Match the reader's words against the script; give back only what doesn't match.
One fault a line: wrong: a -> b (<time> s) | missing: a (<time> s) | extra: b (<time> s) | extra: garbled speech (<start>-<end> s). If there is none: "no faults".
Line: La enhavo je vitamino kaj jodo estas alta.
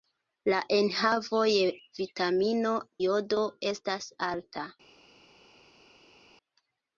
missing: kaj (2.7 s)